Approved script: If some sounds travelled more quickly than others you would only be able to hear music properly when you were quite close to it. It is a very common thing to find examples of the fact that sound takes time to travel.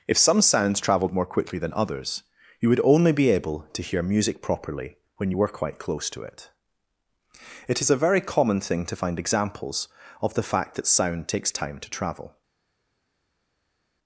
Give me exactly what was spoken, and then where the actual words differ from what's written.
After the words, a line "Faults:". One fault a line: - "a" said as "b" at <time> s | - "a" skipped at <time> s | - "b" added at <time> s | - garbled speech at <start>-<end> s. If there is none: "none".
If some sounds travelled more quickly than others you would only be able to hear music properly when you were quite close to it. It is a very common thing to find examples of the fact that sound takes time to travel.
Faults:
none